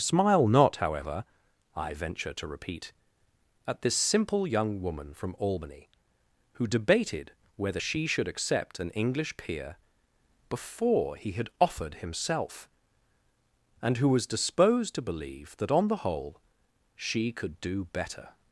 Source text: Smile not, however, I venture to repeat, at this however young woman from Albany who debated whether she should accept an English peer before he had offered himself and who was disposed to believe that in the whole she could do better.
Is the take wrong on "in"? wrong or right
wrong